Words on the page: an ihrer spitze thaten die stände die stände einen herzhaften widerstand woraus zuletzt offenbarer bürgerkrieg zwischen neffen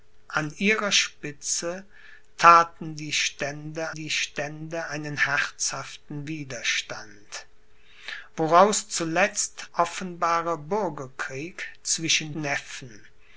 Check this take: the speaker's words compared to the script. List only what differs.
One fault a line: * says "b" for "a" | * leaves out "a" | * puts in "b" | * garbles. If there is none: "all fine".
all fine